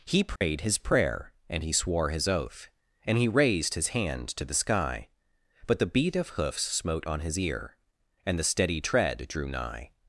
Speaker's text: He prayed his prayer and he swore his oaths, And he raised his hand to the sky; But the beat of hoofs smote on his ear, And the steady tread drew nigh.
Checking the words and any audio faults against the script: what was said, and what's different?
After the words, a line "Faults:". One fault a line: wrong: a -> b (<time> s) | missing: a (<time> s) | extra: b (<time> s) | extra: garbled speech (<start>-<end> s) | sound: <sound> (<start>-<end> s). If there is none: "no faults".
He prayed his prayer and he swore his oath, And he raised his hand to the sky; But the beat of hoofs smote on his ear, And the steady tread drew nigh.
Faults:
sound: dropout (0.4-0.4 s)
wrong: oaths -> oath (2.3 s)